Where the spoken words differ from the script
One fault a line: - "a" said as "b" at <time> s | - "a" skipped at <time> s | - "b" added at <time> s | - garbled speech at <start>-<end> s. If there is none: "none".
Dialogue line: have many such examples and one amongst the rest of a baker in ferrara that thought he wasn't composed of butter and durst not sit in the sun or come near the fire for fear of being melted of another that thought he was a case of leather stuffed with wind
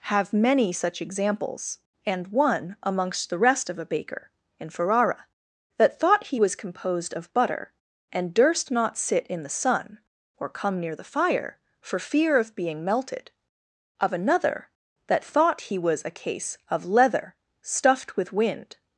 - "wasn't" said as "was" at 6.4 s